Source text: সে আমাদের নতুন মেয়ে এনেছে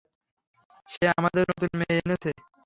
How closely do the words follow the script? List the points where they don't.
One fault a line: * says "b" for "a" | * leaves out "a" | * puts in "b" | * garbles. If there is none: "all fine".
all fine